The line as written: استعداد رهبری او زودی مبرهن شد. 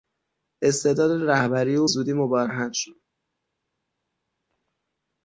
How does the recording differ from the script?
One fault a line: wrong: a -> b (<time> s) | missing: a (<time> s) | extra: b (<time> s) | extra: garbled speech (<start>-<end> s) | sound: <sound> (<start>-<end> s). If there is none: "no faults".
no faults